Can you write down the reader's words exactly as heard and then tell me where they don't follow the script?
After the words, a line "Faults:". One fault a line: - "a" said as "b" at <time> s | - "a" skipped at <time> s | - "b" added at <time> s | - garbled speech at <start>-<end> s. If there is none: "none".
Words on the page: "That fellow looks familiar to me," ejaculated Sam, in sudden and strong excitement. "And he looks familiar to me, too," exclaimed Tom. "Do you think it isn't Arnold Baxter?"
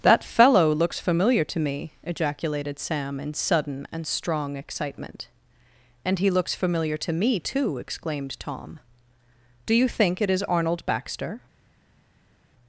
"That fellow looks familiar to me," ejaculated Sam, in sudden and strong excitement. "And he looks familiar to me, too," exclaimed Tom. "Do you think it is Arnold Baxter?"
Faults:
- "isn't" said as "is" at 10.3 s